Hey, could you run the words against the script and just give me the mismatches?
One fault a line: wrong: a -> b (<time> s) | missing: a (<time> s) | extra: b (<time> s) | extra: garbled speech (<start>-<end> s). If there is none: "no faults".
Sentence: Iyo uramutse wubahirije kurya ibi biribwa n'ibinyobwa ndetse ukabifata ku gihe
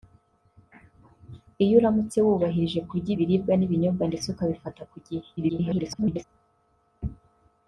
missing: ibi (3.1 s)
extra: garbled speech (5.4-6.2 s)